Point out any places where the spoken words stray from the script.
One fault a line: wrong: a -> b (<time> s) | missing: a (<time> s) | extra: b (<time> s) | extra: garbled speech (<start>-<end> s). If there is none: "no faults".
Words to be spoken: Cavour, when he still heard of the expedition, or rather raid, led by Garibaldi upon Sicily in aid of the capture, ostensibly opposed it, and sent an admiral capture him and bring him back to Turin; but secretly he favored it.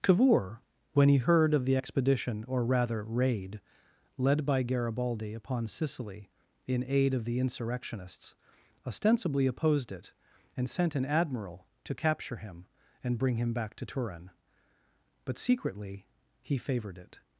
missing: still (1.2 s)
wrong: capture -> insurrectionists (7.4 s)
extra: to (11.8 s)